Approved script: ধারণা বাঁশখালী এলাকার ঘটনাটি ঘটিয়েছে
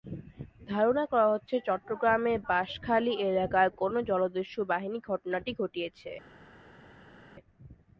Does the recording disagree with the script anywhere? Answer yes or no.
yes